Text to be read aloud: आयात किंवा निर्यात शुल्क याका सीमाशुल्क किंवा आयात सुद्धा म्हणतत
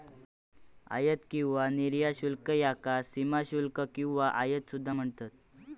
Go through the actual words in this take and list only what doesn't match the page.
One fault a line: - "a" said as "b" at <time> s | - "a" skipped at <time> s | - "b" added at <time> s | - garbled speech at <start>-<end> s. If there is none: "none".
none